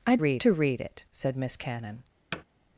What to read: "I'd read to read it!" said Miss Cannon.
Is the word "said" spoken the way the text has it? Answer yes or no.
yes